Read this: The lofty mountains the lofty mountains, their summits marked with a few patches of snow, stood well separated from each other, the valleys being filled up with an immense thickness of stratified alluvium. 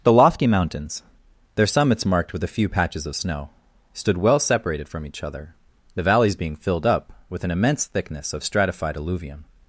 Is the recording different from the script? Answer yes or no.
yes